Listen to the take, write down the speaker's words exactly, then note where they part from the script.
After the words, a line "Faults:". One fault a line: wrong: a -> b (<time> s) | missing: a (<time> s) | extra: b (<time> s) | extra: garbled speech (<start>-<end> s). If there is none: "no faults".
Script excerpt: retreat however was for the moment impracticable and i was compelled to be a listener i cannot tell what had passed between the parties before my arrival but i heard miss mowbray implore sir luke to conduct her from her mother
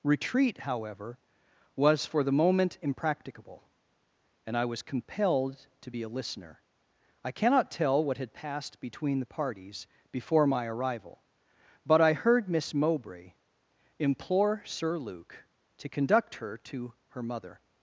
retreat however was for the moment impracticable and i was compelled to be a listener i cannot tell what had passed between the parties before my arrival but i heard miss mowbray implore sir luke to conduct her to her mother
Faults:
wrong: from -> to (16.6 s)